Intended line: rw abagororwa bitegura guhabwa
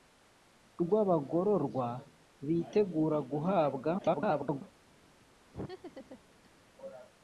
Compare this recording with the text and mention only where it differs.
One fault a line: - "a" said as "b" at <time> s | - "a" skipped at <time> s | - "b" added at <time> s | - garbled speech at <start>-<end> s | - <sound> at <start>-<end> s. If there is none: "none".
- garbled speech at 4.0-4.6 s
- laugh at 5.5-6.6 s